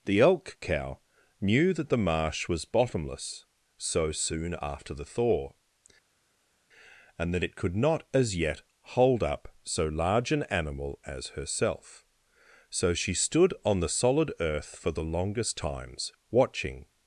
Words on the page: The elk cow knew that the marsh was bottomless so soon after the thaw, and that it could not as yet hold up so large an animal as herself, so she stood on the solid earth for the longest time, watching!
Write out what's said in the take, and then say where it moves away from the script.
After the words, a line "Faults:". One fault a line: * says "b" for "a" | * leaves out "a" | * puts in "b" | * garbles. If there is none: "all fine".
The elk cow knew that the marsh was bottomless so soon after the thaw, and that it could not as yet hold up so large an animal as herself, so she stood on the solid earth for the longest times, watching!
Faults:
* says "times" for "time"